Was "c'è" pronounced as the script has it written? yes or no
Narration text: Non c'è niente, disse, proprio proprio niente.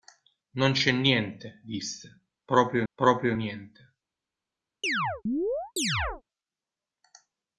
yes